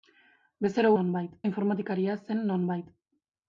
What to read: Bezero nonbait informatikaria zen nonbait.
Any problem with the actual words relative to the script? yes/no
no